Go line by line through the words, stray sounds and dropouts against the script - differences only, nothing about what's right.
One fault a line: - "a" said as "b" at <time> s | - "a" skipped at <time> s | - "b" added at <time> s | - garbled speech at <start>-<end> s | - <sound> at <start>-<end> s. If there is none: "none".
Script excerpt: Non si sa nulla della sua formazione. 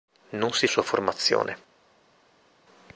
- "sa nulla della" skipped at 0.7 s